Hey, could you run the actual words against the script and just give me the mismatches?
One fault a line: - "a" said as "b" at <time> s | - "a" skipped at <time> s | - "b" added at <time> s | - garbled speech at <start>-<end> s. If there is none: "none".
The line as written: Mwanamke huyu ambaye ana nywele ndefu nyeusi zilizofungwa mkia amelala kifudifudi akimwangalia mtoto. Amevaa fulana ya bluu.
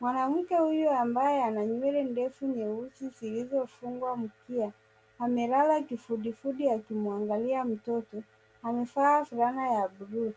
none